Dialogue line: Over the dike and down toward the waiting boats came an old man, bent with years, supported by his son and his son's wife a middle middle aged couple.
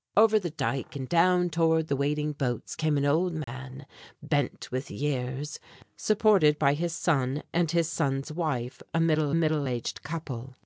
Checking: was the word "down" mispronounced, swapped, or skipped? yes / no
no